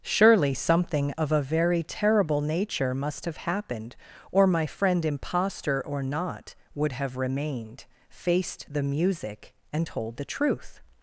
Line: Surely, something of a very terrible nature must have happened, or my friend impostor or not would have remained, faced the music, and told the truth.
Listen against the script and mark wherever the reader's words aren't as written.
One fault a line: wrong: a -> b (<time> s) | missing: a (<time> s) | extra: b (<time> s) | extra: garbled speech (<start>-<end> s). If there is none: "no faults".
no faults